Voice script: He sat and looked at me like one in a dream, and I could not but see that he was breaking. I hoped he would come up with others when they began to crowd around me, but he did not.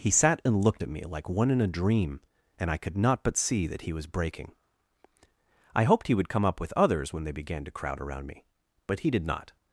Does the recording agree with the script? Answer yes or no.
yes